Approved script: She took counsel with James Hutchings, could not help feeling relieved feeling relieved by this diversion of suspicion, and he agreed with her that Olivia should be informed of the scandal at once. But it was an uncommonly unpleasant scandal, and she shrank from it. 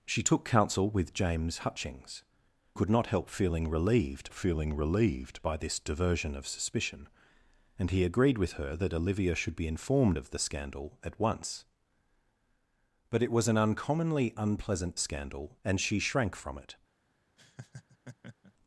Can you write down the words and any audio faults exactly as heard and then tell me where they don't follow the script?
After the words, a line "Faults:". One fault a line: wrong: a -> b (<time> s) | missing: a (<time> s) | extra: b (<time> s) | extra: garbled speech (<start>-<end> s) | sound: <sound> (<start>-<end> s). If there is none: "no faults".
She took counsel with James Hutchings, could not help feeling relieved feeling relieved by this diversion of suspicion, and he agreed with her that Olivia should be informed of the scandal at once. But it was an uncommonly unpleasant scandal, and she shrank from it.
Faults:
sound: laugh (17.4-18.5 s)